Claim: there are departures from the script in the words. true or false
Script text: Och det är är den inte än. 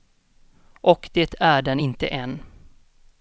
true